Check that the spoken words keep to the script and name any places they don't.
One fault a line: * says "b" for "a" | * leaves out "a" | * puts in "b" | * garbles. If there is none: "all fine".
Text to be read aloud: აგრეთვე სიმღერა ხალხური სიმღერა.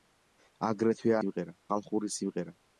all fine